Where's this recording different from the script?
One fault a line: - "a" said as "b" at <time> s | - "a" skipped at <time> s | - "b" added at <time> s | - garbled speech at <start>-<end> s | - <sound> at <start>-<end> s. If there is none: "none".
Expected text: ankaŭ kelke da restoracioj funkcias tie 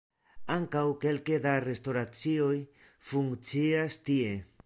none